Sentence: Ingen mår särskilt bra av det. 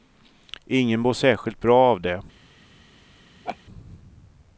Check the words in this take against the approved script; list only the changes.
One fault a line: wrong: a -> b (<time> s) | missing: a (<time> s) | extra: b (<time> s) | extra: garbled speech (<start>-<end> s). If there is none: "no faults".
no faults